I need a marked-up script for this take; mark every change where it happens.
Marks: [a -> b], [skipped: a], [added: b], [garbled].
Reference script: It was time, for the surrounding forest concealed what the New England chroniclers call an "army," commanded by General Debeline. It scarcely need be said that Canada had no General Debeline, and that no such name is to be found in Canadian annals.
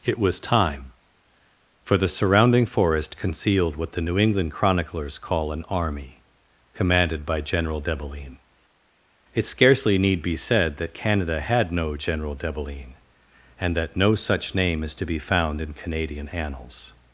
It was time, for the surrounding forest concealed what the New England chroniclers call an "army," commanded by General Debeline. It scarcely need be said that Canada had no General Debeline, and that no such name is to be found in Canadian annals.